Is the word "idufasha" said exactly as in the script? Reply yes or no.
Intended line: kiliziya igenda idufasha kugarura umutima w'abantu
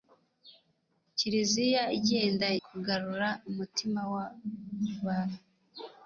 no